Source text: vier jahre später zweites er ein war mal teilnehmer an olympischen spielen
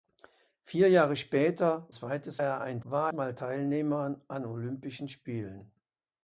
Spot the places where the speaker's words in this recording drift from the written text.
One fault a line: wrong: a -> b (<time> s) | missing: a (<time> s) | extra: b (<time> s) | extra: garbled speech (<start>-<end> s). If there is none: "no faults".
no faults